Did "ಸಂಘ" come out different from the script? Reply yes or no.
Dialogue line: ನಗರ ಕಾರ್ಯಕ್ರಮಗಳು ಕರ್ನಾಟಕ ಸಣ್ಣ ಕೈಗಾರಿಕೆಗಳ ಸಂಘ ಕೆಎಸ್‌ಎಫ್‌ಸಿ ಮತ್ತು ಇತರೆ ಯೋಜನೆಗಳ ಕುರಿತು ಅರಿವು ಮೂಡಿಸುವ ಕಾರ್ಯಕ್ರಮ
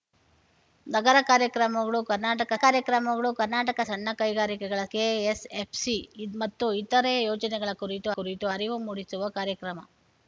yes